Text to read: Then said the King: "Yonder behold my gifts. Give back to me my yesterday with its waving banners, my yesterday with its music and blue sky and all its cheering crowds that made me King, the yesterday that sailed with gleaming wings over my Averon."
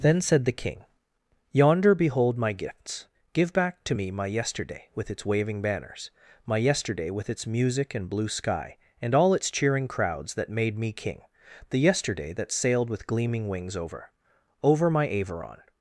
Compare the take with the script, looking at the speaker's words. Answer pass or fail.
fail